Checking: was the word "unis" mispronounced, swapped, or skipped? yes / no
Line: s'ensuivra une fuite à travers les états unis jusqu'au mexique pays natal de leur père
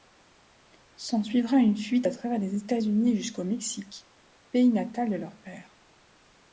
no